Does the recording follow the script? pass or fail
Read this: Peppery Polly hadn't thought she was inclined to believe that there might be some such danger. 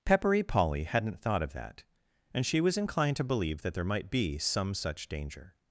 fail